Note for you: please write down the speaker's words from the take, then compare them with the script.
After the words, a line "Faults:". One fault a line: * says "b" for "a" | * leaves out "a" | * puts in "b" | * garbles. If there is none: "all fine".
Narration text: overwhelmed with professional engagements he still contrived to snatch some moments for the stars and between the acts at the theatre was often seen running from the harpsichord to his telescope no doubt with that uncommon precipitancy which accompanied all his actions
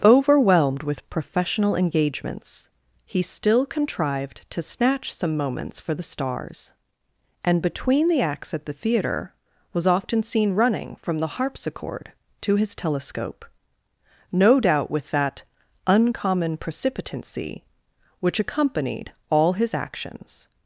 overwhelmed with professional engagements he still contrived to snatch some moments for the stars and between the acts at the theatre was often seen running from the harpsichord to his telescope no doubt with that uncommon precipitancy which accompanied all his actions
Faults:
all fine